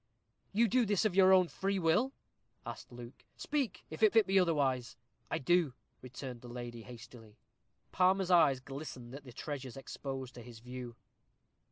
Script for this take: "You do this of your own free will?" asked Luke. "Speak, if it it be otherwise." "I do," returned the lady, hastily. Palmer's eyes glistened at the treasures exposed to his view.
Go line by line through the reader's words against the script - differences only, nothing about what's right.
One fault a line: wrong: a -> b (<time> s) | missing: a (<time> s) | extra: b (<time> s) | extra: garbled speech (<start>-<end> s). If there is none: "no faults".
no faults